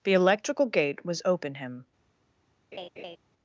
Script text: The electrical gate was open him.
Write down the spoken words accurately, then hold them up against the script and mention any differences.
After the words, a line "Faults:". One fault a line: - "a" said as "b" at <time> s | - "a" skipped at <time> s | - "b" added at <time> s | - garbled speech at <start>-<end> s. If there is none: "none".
The electrical gate was open him.
Faults:
none